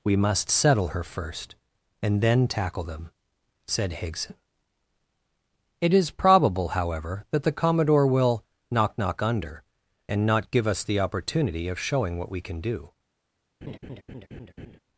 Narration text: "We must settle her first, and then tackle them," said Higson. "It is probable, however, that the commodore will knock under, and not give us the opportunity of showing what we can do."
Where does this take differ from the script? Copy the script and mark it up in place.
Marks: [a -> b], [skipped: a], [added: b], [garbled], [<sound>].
"We must settle her first, and then tackle them," said Higson. "It is probable, however, that the commodore will knock [added: knock] under, and not give us the opportunity of showing what we can do." [laugh]